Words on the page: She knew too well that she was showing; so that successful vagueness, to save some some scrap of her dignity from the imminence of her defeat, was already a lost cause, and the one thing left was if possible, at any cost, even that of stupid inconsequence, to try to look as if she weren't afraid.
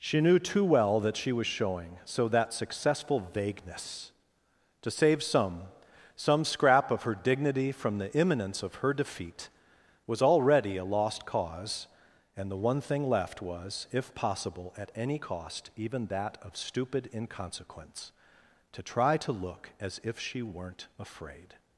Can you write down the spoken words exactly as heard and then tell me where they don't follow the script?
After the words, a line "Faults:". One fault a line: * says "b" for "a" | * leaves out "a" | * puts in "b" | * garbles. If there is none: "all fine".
She knew too well that she was showing; so that successful vagueness, to save some some scrap of her dignity from the imminence of her defeat, was already a lost cause, and the one thing left was if possible, at any cost, even that of stupid inconsequence, to try to look as if she weren't afraid.
Faults:
all fine